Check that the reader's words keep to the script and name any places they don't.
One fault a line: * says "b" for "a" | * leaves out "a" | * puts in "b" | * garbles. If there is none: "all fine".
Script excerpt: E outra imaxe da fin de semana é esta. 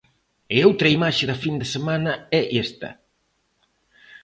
all fine